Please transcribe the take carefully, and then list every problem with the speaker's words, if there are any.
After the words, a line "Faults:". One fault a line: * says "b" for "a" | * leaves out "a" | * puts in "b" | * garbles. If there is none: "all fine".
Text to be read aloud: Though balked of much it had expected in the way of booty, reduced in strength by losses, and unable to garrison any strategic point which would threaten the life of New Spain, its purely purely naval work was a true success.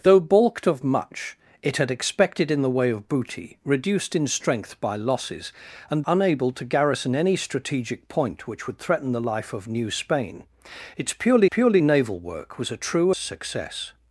Though balked of much it had expected in the way of booty, reduced in strength by losses, and unable to garrison any strategic point which would threaten the life of New Spain, its purely purely naval work was a true success.
Faults:
all fine